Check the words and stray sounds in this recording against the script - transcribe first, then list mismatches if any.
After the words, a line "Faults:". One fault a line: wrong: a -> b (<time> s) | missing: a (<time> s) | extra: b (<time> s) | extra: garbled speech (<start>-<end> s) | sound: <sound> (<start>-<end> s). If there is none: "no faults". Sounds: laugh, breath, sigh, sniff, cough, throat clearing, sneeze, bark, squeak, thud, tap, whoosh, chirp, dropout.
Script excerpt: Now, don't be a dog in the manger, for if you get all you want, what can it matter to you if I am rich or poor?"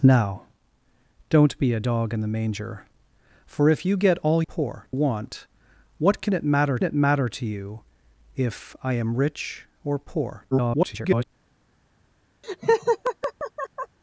Now, don't be a dog in the manger, for if you get all poor want, what can it matter it matter to you if I am rich or poor?" [garbled]
Faults:
wrong: you -> poor (4.4 s)
extra: it matter (6.8 s)
extra: garbled speech (10.5-11.2 s)
sound: laugh (12.4-14.0 s)